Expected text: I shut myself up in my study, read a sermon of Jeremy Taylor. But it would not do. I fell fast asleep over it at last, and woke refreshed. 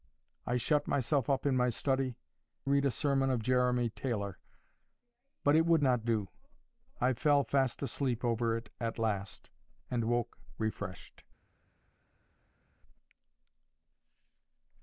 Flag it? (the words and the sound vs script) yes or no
no